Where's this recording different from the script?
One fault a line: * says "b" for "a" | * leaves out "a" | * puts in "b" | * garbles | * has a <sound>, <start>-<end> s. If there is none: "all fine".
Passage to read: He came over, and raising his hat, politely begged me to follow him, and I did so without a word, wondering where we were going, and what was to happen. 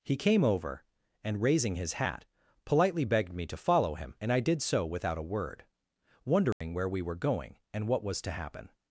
* has a dropout, 6.5-6.6 s